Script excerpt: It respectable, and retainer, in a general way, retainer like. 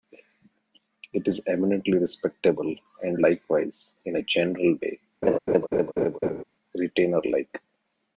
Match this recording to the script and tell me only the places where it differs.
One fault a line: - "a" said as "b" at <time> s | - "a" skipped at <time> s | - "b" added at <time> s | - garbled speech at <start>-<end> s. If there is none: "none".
- "is eminently" added at 1.3 s
- "retainer" said as "likewise" at 3.2 s